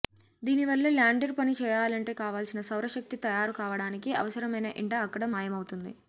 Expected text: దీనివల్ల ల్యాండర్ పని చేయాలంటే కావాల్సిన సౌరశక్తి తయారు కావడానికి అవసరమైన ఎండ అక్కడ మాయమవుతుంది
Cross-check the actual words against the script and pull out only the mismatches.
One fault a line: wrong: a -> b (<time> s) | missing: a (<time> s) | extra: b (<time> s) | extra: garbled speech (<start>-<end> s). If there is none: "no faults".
no faults